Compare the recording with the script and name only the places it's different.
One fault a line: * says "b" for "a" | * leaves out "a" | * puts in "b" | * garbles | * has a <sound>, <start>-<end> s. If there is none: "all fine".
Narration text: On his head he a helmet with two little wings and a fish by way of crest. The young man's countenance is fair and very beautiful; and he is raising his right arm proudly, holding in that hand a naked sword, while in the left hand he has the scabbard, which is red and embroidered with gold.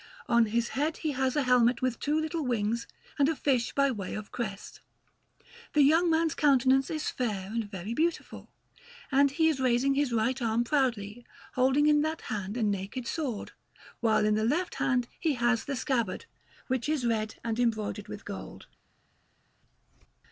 * puts in "has"